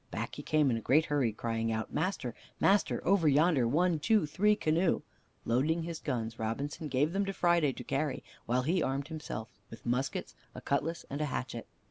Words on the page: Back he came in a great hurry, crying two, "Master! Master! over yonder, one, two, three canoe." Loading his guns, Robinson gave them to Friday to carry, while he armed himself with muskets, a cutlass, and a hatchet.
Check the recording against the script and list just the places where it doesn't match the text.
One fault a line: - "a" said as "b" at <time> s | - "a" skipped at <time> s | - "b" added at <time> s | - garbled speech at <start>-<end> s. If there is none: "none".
- "two" said as "out" at 1.7 s